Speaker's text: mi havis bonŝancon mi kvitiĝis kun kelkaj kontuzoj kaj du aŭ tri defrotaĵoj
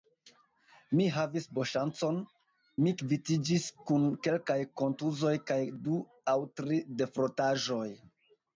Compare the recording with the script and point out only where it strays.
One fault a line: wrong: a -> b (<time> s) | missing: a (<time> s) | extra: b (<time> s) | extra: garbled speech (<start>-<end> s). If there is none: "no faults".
no faults